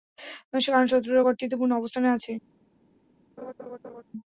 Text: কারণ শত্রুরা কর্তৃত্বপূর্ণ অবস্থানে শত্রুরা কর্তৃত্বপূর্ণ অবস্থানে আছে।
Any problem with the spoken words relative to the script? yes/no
yes